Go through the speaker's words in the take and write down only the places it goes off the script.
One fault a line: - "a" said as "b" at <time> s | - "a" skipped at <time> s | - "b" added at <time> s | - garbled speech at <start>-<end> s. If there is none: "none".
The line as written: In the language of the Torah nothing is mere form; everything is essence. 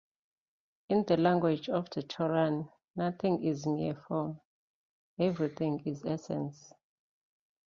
none